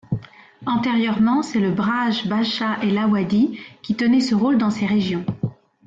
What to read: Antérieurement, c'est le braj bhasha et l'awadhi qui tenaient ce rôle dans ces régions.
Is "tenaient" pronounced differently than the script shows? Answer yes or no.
no